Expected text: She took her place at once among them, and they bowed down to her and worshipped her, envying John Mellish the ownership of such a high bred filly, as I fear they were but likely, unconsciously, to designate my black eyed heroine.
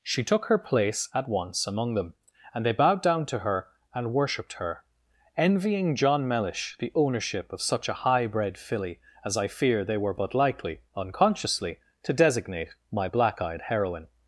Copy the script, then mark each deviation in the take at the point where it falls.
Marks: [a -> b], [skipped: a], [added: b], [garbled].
She took her place at once among them, and they bowed down to her and worshipped her, envying John Mellish the ownership of such a high bred filly, as I fear they were but likely, unconsciously, to designate my black eyed heroine.